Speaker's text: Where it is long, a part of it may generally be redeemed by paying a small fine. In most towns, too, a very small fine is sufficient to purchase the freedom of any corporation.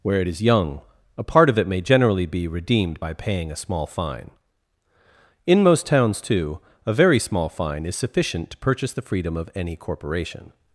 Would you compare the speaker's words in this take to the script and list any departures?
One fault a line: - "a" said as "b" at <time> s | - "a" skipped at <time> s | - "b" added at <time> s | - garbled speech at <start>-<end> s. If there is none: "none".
- "long" said as "young" at 0.4 s